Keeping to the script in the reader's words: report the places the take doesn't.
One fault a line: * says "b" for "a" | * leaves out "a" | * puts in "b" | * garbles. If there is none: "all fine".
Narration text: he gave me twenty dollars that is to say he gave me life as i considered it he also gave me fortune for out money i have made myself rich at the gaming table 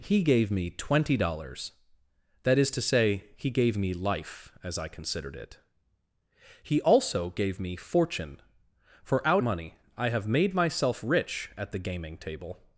all fine